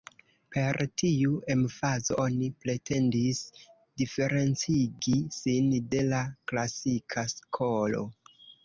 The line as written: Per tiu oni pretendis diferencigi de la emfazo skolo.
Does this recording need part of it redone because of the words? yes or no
yes